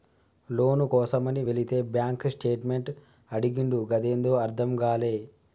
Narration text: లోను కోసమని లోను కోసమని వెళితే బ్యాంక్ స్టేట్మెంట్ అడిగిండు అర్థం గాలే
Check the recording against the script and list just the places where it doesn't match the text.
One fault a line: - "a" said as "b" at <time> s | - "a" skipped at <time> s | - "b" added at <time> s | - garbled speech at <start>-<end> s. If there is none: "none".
- "లోను కోసమని" skipped at 1.4 s
- "గదేందో" added at 3.9 s